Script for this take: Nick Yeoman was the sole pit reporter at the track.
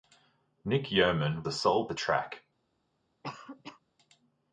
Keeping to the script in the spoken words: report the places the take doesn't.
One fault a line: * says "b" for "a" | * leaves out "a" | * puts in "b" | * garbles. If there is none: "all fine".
* leaves out "was"
* leaves out "pit reporter at"